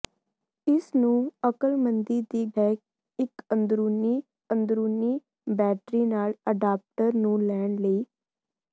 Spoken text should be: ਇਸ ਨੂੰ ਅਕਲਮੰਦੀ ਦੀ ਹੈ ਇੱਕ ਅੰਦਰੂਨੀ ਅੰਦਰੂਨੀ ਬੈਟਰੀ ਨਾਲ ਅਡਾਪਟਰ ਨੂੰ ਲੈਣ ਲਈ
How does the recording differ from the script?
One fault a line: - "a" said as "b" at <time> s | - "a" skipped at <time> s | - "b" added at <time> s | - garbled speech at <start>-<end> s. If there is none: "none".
none